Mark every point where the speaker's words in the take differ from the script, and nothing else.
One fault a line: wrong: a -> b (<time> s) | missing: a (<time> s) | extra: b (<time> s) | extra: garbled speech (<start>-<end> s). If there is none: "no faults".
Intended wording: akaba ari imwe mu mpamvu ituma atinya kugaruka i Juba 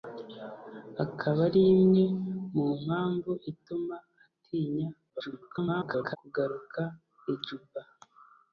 extra: garbled speech (5.1-6.2 s)